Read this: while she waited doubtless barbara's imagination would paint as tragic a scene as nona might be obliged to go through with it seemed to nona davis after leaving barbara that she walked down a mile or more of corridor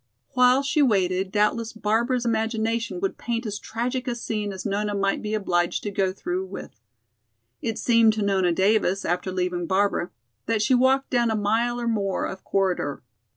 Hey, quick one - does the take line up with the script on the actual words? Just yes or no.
yes